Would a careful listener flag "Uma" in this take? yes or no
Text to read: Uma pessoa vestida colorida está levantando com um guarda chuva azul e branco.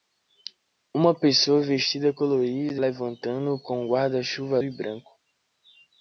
no